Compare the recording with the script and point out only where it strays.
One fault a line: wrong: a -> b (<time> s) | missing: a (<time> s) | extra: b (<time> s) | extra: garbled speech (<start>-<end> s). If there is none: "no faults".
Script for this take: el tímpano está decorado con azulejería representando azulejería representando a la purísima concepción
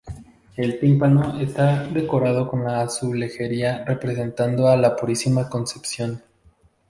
missing: azulejería representando (4.7 s)